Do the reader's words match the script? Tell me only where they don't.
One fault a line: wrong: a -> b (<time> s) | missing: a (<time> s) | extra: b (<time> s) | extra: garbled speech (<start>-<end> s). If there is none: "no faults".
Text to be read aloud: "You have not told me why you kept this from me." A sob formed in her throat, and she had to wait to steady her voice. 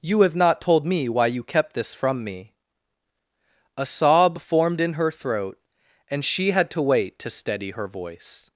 no faults